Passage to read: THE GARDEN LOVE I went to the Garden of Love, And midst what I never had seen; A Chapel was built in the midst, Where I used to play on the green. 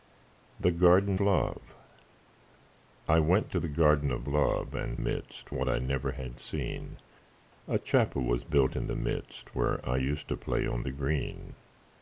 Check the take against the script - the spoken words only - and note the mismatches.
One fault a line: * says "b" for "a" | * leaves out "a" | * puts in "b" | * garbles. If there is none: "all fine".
all fine